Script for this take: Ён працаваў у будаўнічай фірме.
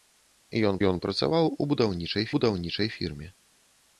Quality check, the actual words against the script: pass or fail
fail